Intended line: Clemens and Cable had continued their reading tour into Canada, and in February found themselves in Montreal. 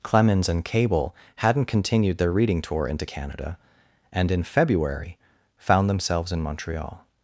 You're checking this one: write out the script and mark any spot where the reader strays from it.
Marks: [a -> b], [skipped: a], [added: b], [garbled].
Clemens and Cable [had -> hadn't] continued their reading tour into Canada, and in February found themselves in Montreal.